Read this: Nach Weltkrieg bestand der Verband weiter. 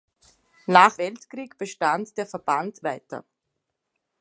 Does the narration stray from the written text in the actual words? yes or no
no